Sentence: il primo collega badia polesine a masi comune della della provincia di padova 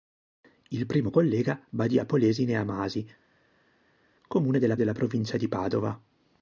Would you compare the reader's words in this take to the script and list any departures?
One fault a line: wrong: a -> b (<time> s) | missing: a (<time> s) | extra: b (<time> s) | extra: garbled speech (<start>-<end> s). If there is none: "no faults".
no faults